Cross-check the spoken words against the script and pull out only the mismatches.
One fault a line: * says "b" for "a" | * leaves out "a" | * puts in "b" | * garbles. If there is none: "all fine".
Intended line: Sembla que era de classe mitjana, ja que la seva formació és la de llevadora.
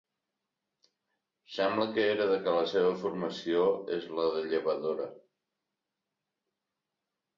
* leaves out "classe mitjana ja"